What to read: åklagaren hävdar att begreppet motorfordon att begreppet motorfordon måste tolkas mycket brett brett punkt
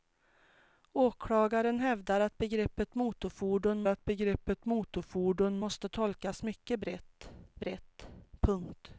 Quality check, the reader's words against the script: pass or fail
pass